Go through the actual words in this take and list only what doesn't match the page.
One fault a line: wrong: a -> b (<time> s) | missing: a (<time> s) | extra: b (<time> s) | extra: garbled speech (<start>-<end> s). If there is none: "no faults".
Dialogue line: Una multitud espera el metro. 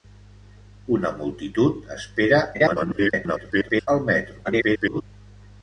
extra: garbled speech (2.5-3.9 s)
extra: garbled speech (4.4-5.0 s)